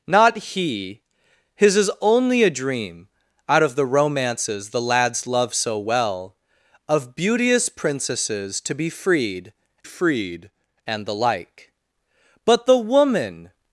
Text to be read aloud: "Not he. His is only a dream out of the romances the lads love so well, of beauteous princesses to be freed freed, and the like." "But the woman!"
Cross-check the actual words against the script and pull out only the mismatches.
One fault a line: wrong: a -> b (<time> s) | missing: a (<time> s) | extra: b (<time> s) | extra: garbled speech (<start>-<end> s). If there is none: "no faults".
no faults